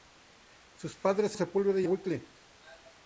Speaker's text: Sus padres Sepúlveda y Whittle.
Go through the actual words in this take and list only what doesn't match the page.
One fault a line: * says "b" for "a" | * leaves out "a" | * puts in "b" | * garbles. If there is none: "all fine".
all fine